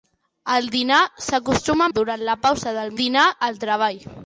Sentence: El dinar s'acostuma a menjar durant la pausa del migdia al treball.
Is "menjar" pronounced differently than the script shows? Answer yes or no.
yes